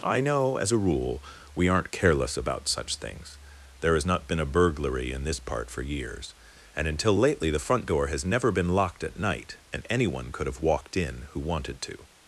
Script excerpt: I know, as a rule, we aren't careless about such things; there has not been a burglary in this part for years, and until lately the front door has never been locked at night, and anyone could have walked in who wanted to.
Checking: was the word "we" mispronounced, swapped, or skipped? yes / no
no